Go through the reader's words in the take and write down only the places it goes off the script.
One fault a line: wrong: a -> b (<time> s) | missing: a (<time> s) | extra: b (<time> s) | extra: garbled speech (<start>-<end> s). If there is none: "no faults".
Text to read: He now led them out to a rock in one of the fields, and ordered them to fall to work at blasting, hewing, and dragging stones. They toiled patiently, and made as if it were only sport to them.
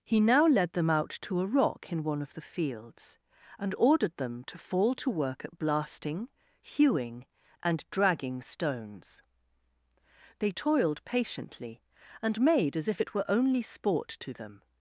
no faults